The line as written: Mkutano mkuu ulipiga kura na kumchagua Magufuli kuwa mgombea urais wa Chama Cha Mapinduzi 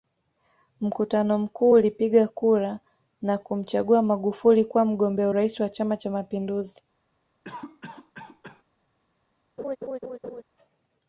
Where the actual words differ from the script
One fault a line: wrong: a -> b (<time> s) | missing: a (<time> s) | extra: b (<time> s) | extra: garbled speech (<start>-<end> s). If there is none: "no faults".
no faults